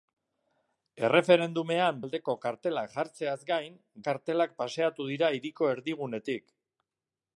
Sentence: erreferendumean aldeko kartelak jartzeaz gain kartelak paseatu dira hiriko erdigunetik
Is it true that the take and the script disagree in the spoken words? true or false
false